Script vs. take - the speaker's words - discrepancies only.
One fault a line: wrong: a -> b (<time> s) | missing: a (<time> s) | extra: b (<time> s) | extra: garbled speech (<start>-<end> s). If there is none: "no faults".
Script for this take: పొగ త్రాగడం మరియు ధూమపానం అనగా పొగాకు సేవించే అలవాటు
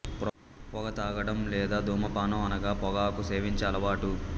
wrong: మరియు -> లేదా (1.5 s)